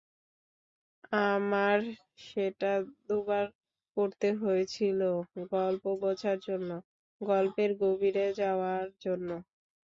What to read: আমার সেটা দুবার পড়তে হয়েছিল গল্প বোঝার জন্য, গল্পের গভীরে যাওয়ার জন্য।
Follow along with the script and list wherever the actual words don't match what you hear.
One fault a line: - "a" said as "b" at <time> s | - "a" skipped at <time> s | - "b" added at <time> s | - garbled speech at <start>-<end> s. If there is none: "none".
none